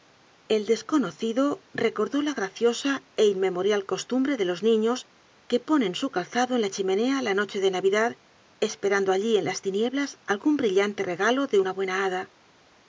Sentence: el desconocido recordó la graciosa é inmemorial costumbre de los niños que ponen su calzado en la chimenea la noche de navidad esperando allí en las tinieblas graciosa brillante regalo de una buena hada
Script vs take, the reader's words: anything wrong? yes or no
yes